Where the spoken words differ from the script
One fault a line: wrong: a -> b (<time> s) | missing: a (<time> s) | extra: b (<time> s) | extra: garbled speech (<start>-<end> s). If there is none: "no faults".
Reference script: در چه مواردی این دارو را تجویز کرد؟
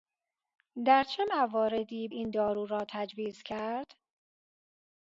no faults